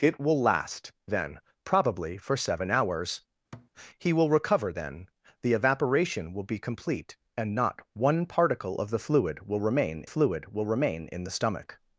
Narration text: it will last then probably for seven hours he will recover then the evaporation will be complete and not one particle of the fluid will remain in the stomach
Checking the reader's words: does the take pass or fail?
fail